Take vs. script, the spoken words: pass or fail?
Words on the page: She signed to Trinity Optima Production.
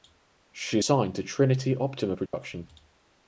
pass